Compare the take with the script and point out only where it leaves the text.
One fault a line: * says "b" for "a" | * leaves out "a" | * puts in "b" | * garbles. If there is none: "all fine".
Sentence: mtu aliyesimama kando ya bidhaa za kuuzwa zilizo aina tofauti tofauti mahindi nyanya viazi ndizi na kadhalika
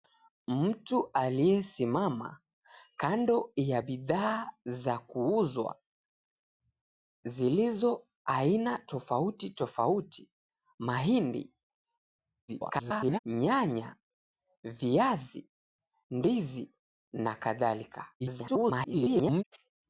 * garbles
* garbles